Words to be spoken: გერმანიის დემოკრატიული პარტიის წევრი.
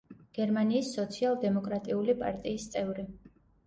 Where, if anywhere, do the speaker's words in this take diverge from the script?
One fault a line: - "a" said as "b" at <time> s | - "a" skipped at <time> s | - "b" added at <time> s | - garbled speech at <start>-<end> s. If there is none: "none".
- "სოციალ" added at 0.9 s